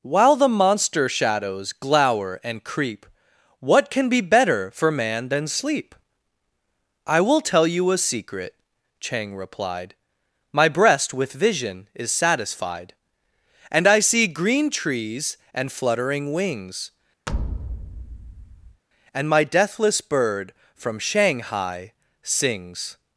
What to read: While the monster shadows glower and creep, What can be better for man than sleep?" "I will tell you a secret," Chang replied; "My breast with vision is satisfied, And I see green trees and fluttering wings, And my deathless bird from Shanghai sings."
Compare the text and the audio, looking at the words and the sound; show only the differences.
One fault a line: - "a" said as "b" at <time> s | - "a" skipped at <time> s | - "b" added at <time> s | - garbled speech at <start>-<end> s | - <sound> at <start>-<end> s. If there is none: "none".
- thud at 17.3-18.8 s